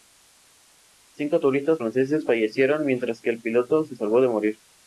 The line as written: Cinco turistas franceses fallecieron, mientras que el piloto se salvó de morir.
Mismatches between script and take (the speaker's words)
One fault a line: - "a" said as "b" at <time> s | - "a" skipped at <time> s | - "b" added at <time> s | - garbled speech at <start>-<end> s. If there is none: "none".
none